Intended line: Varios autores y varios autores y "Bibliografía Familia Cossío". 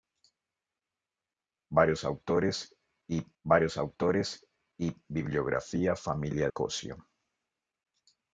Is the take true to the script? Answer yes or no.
yes